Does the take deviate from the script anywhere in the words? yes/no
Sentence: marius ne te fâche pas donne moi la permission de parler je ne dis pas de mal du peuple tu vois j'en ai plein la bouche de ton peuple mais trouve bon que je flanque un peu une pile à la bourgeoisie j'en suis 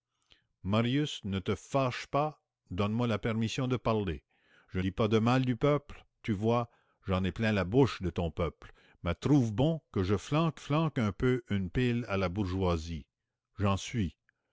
yes